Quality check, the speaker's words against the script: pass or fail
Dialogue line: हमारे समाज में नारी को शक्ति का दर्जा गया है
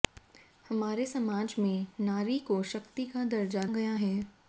pass